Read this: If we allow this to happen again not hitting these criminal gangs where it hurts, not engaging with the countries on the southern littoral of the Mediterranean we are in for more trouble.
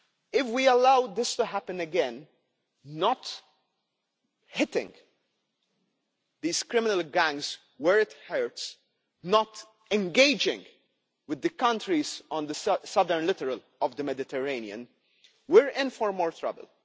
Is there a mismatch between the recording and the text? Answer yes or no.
no